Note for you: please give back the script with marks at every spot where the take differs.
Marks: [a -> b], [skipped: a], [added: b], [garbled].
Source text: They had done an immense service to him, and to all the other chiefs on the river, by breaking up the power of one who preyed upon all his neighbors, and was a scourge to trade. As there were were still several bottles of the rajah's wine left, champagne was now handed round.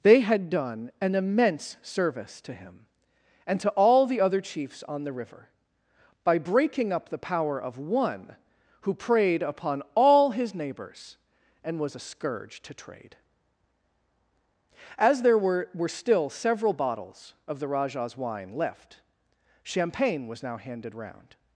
They had done an immense service to him, and to all the other chiefs on the river, by breaking up the power of one who preyed upon all his neighbors, and was a scourge to trade. As there were were still several bottles of the rajah's wine left, champagne was now handed round.